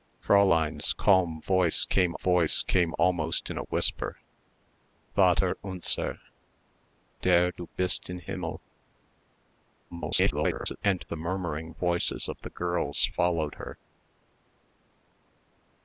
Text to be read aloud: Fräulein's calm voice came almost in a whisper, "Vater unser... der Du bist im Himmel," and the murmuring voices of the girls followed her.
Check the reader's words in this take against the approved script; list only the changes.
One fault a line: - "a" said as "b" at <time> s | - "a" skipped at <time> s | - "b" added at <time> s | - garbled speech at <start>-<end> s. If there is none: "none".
- "voice came" added at 2.2 s
- garbled speech at 9.9-10.8 s